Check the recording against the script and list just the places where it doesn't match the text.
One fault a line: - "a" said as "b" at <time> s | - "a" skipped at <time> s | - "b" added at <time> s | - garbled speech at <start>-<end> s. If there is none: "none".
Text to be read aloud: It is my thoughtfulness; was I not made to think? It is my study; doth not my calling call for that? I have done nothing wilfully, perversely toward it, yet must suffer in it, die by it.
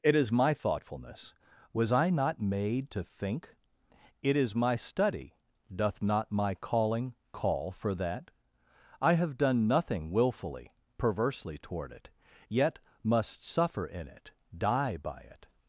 none